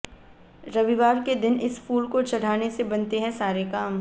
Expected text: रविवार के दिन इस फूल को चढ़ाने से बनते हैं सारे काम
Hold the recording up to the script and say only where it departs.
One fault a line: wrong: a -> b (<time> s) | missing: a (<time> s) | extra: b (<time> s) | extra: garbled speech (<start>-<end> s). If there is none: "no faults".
no faults